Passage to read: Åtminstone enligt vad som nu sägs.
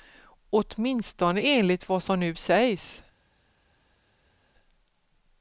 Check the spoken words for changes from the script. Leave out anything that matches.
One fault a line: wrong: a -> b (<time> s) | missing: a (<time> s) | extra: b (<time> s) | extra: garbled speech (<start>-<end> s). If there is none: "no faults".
no faults